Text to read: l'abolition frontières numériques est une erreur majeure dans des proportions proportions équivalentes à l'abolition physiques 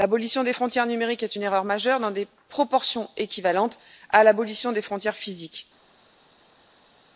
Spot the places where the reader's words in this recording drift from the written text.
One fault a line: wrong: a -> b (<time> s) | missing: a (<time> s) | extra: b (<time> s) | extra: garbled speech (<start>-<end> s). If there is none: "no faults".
extra: des (0.4 s)
missing: proportions (3.1 s)
extra: des frontières (4.7 s)